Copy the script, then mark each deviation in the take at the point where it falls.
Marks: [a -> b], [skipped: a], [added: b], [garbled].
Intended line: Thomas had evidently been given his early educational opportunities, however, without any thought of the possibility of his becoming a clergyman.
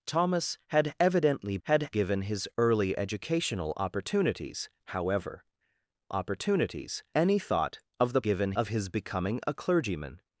Thomas had evidently [been -> had] given his early educational opportunities, however, [without -> opportunities] any thought of the [possibility -> given] of his becoming a clergyman.